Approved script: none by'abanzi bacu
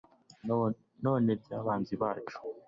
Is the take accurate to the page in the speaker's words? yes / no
yes